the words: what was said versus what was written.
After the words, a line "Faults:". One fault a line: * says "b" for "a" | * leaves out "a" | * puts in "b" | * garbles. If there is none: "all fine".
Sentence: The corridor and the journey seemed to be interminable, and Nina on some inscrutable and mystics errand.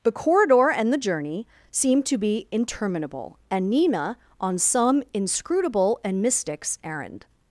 The corridor and the journey seemed to be interminable, and Nina on some inscrutable and mystics errand.
Faults:
all fine